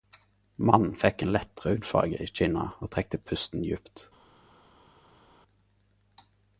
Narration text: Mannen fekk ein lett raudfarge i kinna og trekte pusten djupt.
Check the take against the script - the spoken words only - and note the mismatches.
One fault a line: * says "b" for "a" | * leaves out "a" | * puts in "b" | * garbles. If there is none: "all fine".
all fine